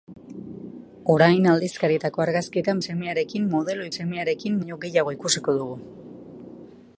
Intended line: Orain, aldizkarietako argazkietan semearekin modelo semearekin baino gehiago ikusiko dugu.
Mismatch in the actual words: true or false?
false